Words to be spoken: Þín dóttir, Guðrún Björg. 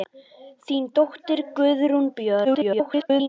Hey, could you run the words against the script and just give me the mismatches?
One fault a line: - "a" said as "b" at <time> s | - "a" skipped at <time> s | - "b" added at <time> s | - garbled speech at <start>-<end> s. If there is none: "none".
- garbled speech at 2.4-3.3 s